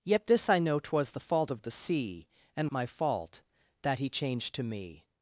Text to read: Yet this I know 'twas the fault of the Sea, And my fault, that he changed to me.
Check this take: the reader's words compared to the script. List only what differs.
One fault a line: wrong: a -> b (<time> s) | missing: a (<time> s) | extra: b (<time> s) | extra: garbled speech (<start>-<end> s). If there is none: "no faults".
no faults